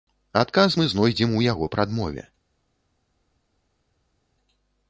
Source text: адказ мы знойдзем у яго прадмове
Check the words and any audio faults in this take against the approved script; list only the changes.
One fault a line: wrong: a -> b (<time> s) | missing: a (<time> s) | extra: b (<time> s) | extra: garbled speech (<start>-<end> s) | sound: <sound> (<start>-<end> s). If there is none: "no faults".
no faults